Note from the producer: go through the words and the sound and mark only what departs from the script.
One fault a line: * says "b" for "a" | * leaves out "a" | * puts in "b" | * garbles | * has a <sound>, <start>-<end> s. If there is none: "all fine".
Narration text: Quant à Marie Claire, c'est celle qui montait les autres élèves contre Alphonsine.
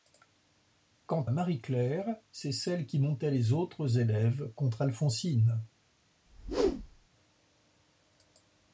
* leaves out "à"
* has a whoosh, 6.3-7.1 s